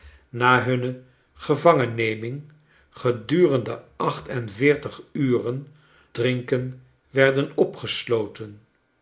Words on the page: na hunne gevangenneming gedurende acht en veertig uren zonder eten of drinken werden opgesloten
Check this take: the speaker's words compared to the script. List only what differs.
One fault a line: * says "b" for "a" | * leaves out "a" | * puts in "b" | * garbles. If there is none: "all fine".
* leaves out "zonder eten of"